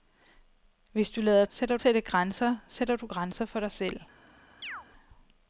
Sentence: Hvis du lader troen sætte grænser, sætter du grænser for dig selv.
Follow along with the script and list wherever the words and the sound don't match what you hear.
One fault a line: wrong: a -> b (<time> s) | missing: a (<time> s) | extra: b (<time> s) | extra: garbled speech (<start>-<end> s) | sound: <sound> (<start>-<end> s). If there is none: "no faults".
wrong: troen -> sætter (1.5 s)
sound: chirp (4.6-4.9 s)